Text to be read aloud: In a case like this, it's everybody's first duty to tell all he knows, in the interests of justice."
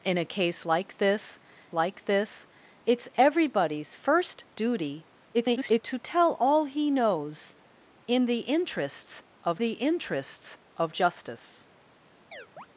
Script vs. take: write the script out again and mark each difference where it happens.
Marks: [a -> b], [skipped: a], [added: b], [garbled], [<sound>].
In a case like this, [added: like this] it's everybody's first duty [garbled] to tell all he knows, in the interests of [added: the interests of] justice." [chirp]